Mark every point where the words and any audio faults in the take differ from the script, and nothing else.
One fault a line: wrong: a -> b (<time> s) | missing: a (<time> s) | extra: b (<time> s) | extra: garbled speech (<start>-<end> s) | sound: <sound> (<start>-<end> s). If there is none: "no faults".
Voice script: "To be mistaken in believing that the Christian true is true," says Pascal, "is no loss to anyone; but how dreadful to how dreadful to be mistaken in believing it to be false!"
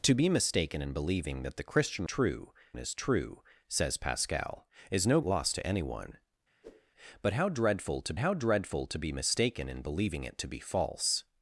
sound: whoosh (6.6-6.9 s)